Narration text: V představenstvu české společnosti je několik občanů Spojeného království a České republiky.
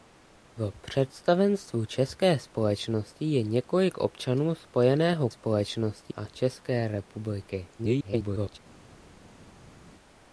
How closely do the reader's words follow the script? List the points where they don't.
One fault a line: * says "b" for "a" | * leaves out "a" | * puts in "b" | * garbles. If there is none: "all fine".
* says "společnosti" for "království"
* garbles